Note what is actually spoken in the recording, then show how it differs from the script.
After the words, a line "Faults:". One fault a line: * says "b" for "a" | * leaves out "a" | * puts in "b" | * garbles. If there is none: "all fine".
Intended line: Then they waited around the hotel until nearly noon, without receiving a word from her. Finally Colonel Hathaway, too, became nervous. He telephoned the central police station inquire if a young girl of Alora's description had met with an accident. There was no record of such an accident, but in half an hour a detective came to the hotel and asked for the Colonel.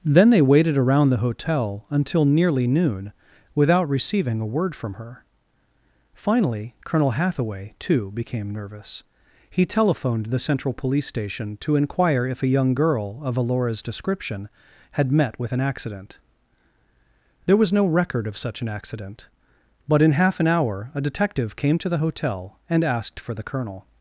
Then they waited around the hotel until nearly noon, without receiving a word from her. Finally Colonel Hathaway, too, became nervous. He telephoned the central police station to inquire if a young girl of Alora's description had met with an accident. There was no record of such an accident, but in half an hour a detective came to the hotel and asked for the Colonel.
Faults:
* puts in "to"